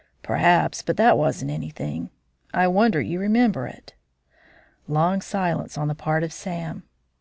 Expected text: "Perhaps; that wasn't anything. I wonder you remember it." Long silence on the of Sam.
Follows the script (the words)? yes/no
no